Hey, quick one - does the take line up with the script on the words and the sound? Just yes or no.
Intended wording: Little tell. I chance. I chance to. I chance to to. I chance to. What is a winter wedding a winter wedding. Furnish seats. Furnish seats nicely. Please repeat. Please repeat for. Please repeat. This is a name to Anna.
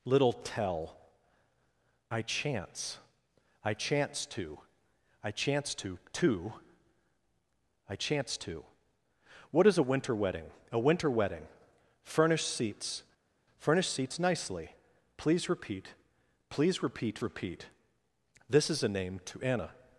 no